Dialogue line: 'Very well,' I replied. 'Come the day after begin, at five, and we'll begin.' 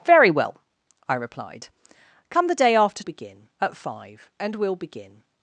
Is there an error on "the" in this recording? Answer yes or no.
no